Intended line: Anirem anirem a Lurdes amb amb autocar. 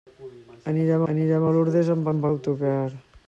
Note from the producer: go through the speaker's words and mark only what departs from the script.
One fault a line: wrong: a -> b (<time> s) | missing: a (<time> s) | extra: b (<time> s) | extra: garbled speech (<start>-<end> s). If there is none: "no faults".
no faults